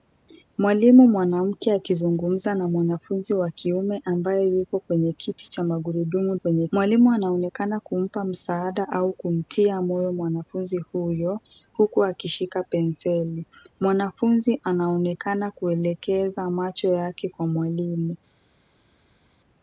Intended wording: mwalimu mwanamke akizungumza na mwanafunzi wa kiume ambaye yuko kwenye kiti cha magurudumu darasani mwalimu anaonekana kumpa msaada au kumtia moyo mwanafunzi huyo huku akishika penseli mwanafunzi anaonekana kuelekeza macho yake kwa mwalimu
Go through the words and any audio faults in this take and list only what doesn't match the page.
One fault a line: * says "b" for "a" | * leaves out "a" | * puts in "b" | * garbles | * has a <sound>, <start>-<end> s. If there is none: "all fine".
* says "kwenye" for "darasani"